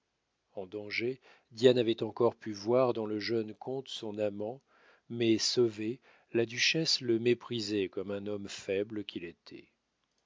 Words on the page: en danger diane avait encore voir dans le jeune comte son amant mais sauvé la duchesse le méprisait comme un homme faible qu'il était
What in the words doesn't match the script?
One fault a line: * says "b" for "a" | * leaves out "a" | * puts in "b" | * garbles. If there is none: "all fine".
* puts in "pu"